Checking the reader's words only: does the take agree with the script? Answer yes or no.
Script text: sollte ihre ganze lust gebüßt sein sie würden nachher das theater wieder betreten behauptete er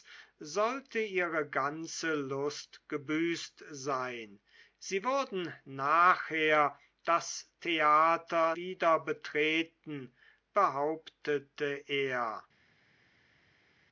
yes